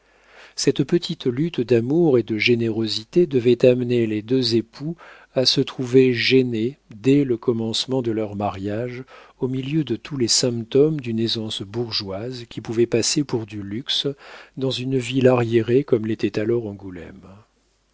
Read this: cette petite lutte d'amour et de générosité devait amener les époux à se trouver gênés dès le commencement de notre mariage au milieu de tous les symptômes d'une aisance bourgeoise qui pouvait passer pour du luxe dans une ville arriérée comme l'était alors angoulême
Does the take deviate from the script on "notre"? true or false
true